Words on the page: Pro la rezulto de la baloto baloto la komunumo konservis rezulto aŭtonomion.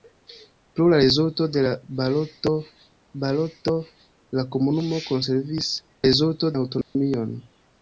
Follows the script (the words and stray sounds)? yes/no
no